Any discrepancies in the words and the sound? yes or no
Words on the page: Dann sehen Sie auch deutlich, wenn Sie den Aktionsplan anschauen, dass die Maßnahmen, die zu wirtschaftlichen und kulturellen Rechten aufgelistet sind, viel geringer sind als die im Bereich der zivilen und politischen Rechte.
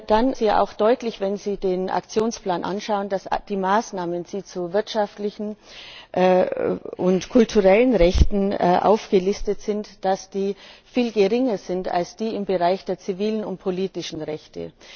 yes